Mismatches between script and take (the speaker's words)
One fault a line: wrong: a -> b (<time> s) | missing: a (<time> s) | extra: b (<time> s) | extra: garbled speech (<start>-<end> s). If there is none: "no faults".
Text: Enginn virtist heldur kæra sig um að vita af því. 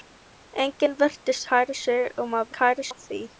missing: heldur (1.4 s)
wrong: vita -> kæra (2.6 s)